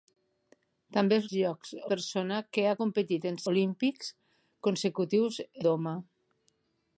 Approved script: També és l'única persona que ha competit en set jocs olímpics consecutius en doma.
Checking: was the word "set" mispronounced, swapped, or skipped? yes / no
yes